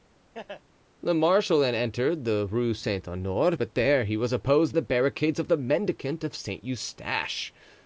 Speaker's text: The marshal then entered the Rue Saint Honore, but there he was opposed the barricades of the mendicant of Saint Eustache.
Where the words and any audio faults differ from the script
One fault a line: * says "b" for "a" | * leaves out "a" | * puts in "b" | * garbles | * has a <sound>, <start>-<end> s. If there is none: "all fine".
* has a laugh, 0.3-0.6 s